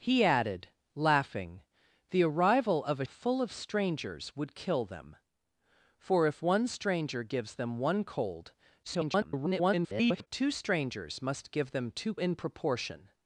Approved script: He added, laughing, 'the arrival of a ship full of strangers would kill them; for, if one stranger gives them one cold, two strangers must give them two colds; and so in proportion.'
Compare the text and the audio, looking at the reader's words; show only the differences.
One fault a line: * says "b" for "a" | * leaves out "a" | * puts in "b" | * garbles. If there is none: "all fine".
* leaves out "ship"
* garbles
* leaves out "colds and so"